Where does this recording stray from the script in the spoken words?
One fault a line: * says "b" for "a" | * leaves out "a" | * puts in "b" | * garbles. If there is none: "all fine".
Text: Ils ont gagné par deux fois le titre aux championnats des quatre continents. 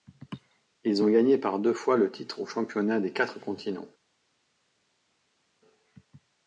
all fine